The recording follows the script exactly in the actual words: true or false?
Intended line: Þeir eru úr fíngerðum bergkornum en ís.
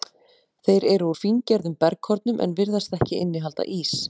false